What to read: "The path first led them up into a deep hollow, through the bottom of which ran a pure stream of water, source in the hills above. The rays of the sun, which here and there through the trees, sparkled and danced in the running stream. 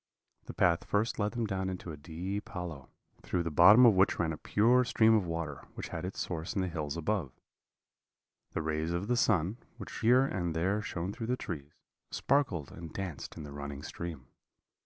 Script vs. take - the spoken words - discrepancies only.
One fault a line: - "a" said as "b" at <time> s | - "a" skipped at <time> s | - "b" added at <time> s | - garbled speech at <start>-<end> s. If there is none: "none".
- "up" said as "down" at 1.5 s
- "which had its" added at 5.7 s
- "shone" added at 10.8 s